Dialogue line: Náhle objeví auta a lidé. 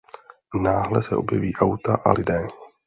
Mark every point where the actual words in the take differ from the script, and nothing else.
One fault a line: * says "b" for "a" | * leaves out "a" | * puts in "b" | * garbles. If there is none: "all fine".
* puts in "se"